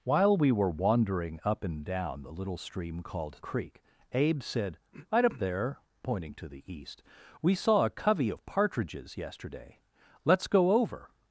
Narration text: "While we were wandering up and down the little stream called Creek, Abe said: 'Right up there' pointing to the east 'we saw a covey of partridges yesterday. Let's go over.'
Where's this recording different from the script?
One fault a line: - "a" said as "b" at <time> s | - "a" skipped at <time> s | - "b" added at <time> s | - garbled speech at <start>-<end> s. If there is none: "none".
none